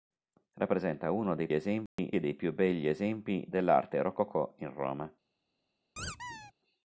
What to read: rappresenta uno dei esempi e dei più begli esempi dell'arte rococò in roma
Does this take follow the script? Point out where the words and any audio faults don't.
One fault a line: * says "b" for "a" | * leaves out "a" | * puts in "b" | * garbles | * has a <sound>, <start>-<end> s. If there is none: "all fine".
* has a dropout, 1.9-2.0 s
* has a squeak, 6.0-6.5 s